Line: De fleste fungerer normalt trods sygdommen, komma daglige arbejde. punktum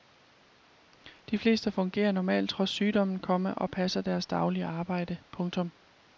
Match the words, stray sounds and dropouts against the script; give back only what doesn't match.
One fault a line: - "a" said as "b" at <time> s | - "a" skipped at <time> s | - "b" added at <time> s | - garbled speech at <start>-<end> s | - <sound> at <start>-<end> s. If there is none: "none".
- "og passer deres" added at 3.5 s